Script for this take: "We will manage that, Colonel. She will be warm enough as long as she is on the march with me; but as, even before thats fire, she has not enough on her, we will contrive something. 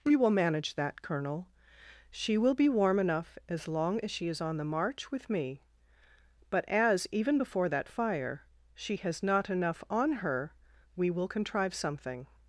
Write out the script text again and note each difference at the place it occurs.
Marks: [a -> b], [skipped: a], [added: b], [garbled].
"We will manage that, Colonel. She will be warm enough as long as she is on the march with me; but as, even before [thats -> that] fire, she has not enough on her, we will contrive something.